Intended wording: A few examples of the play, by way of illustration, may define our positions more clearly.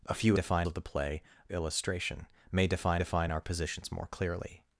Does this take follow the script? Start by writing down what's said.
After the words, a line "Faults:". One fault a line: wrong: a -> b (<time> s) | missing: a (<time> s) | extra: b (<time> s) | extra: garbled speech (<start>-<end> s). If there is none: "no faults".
A few define of the play, illustration, may define define our positions more clearly.
Faults:
wrong: examples -> define (0.3 s)
missing: by way of (1.2 s)
extra: define (2.9 s)